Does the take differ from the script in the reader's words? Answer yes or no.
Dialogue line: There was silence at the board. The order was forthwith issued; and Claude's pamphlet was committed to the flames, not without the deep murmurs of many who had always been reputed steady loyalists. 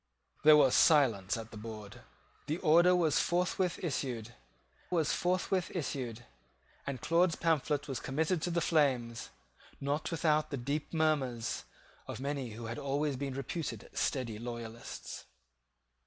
yes